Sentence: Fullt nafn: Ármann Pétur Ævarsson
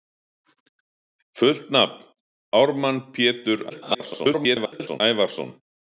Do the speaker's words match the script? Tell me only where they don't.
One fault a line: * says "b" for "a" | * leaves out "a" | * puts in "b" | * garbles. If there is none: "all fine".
* garbles